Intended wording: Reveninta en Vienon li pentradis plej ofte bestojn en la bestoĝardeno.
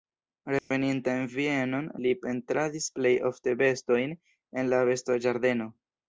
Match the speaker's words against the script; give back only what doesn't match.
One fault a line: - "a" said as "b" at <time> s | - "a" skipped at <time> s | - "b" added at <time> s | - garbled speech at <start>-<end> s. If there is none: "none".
none